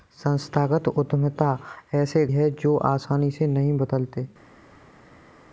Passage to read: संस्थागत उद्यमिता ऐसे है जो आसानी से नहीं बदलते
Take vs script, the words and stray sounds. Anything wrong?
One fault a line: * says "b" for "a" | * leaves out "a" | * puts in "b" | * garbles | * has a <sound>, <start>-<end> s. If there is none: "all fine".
all fine